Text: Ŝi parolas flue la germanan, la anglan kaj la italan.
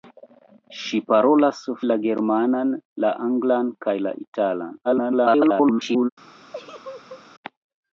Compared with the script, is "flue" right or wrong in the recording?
wrong